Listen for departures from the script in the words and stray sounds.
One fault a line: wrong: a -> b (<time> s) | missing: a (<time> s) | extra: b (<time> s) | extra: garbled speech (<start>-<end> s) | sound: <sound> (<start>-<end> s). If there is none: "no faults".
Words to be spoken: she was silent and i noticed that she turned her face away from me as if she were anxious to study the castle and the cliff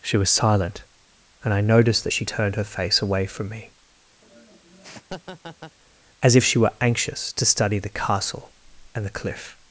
sound: laugh (4.2-5.8 s)